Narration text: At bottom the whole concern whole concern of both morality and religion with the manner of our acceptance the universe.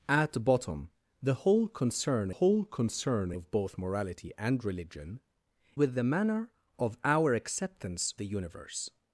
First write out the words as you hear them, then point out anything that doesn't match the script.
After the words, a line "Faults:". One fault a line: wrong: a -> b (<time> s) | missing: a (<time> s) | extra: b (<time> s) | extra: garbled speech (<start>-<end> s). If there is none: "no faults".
At bottom the whole concern whole concern of both morality and religion with the manner of our acceptance the universe.
Faults:
no faults